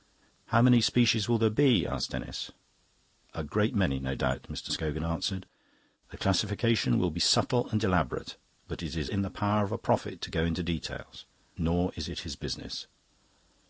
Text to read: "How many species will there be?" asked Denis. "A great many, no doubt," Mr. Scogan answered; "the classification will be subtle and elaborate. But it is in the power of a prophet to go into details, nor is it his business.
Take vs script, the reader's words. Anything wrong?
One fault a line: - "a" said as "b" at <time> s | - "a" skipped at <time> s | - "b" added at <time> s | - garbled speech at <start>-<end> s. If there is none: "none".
none